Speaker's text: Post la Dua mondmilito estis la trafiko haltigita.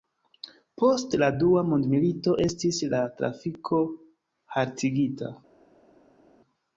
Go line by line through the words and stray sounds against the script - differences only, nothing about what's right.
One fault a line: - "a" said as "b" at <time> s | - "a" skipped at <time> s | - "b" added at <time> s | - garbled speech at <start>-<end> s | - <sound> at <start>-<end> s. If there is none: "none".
none